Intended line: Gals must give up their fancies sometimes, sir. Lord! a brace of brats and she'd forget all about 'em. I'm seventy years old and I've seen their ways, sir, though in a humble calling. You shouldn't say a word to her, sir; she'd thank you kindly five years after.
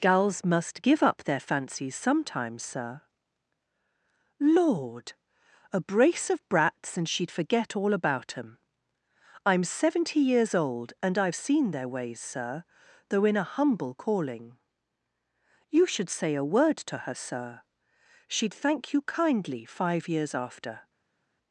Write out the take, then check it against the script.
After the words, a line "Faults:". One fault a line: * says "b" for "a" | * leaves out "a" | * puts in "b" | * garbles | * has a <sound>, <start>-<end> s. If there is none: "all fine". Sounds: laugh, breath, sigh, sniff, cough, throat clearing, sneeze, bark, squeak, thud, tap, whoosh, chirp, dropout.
Gals must give up their fancies sometimes, sir. Lord! a brace of brats and she'd forget all about 'em. I'm seventy years old and I've seen their ways, sir, though in a humble calling. You should say a word to her, sir; she'd thank you kindly five years after.
Faults:
* says "should" for "shouldn't"